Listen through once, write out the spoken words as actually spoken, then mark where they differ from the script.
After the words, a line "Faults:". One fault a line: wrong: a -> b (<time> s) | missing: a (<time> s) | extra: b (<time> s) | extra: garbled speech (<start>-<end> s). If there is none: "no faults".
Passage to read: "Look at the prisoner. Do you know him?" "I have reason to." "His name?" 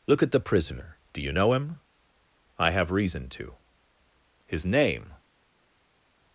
"Look at the prisoner. Do you know him?" "I have reason to." "His name?"
Faults:
no faults